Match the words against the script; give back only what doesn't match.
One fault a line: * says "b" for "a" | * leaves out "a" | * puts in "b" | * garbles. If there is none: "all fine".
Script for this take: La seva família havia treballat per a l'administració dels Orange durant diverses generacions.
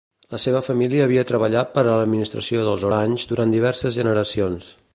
all fine